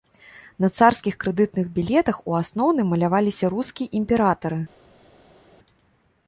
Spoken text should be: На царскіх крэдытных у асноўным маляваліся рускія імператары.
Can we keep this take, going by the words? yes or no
no